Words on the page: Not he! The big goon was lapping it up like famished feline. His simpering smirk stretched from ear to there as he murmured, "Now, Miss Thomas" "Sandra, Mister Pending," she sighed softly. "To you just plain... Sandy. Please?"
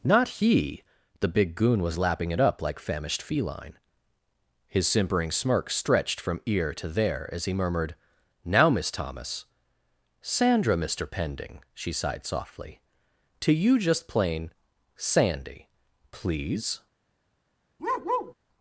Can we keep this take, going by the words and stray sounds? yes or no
no